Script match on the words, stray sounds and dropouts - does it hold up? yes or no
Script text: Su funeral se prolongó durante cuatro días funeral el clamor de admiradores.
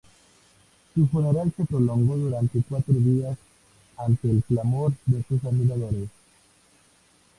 no